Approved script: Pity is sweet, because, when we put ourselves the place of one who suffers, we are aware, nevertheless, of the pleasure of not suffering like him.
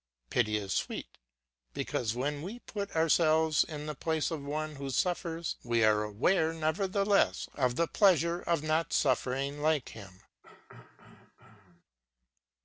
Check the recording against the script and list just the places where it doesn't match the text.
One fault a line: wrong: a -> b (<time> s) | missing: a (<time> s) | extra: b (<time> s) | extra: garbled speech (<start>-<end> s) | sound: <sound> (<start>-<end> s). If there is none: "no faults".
extra: in (3.6 s)
sound: throat clearing (10.4-11.8 s)